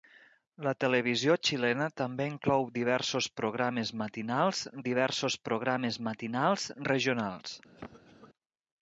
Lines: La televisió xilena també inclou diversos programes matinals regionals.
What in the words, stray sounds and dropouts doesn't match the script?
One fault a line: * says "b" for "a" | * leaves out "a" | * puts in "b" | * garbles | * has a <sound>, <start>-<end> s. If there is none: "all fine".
* puts in "diversos programes matinals"
* has a cough, 7.8-8.3 s